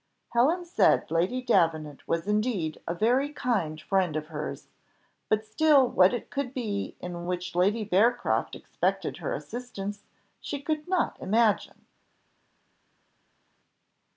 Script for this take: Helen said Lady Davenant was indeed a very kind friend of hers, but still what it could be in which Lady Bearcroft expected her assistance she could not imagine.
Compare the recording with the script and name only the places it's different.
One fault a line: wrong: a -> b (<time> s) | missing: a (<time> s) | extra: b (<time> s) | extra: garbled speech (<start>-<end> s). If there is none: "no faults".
no faults